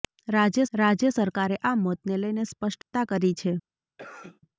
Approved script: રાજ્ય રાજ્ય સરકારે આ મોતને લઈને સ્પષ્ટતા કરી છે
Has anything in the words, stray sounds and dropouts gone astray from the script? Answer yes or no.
yes